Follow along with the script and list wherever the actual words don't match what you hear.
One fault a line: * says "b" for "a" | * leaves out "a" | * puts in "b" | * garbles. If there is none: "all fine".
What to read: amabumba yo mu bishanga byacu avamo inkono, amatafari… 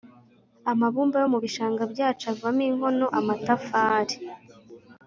all fine